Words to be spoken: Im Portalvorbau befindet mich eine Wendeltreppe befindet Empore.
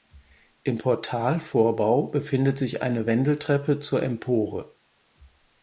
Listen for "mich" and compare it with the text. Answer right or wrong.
wrong